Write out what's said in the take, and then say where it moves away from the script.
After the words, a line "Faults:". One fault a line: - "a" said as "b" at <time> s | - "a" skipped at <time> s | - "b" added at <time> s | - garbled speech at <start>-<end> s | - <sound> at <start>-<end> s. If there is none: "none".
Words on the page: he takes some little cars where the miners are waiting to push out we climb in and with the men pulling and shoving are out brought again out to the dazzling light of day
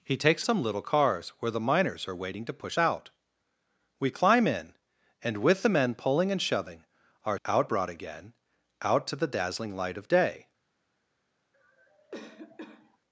he takes some little cars where the miners are waiting to push out we climb in and with the men pulling and shoving are out brought again out to the dazzling light of day
Faults:
- cough at 11.5-13.0 s